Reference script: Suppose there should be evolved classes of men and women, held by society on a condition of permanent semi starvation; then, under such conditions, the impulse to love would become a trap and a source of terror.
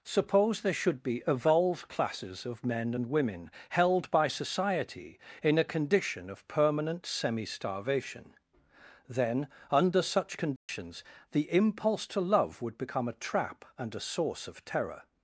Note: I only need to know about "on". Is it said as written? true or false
false